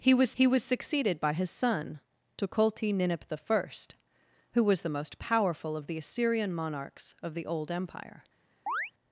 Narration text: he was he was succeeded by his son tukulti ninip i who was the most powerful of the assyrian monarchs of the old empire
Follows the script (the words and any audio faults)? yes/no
no